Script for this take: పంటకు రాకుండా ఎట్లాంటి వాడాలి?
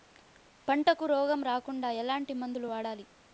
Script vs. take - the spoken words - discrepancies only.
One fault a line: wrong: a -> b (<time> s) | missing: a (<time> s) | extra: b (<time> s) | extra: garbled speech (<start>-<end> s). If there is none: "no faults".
extra: రోగం (1.1 s)
extra: మందులు (2.3 s)